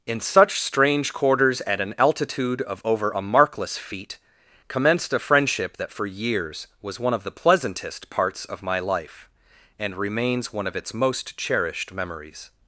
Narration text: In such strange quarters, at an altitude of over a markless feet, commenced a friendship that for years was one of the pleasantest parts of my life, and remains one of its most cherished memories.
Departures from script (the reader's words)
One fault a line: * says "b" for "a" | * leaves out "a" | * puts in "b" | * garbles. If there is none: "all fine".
all fine